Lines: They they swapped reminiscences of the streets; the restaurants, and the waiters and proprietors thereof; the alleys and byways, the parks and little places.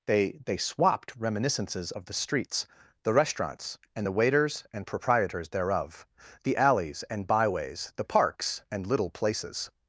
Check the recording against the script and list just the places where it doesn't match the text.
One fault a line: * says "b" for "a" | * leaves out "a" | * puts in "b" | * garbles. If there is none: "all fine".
all fine